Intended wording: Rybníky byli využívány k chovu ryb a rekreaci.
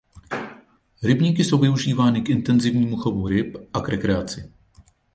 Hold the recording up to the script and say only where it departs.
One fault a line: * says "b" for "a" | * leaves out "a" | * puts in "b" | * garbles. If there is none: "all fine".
* says "jsou" for "byli"
* puts in "intenzivnímu"
* puts in "k"